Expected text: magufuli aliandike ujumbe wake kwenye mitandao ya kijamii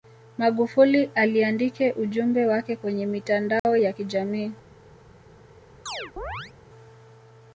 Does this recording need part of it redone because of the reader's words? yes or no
no